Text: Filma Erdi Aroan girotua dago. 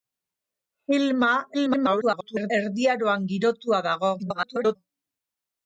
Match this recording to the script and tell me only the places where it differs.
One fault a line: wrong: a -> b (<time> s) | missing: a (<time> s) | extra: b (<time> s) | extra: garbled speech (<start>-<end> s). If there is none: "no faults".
extra: garbled speech (1.5-2.5 s)
extra: garbled speech (4.2-4.8 s)